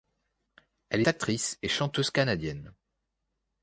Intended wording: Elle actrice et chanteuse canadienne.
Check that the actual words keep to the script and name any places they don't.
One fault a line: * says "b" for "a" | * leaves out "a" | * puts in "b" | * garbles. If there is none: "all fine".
all fine